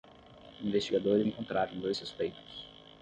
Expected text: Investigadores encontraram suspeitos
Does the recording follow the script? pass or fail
fail